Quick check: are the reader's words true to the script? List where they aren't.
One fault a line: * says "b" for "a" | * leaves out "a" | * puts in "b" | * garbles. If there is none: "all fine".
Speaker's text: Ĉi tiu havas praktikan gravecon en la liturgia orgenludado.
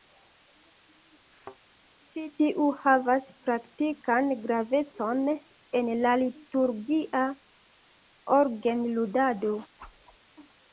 all fine